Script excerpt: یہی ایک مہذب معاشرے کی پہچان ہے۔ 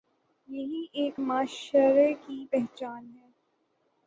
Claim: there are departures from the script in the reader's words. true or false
true